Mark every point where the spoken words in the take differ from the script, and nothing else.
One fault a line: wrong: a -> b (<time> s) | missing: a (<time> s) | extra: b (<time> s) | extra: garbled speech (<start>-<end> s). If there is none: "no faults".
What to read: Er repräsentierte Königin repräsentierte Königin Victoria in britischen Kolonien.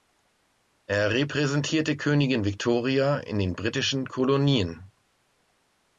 missing: repräsentierte Königin (2.4 s)
extra: den (3.4 s)